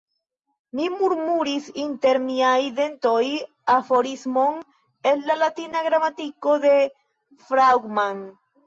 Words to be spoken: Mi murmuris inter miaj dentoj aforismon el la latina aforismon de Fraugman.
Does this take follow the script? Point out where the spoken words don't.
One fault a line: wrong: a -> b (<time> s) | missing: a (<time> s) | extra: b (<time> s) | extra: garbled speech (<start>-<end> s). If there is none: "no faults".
wrong: aforismon -> gramatiko (5.9 s)